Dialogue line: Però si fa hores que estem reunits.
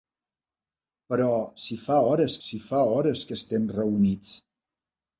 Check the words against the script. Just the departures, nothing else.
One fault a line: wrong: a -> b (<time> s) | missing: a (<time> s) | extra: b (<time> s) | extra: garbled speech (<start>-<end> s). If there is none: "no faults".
extra: si fa hores (2.5 s)